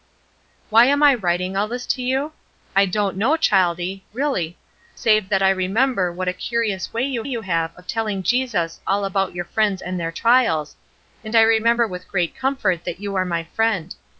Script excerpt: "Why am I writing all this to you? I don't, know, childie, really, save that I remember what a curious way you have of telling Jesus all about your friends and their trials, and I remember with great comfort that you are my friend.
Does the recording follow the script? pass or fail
fail